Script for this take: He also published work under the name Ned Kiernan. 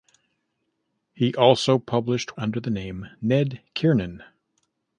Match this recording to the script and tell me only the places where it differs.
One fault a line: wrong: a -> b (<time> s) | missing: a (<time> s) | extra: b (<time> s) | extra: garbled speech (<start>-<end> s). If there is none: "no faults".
missing: work (2.4 s)